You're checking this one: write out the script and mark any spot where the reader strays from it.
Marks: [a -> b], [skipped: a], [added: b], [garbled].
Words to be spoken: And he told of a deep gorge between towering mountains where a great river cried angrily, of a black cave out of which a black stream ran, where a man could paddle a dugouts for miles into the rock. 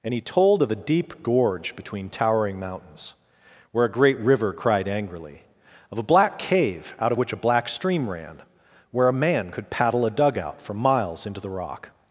And he told of a deep gorge between towering mountains where a great river cried angrily, of a black cave out of which a black stream ran, where a man could paddle a [dugouts -> dugout] for miles into the rock.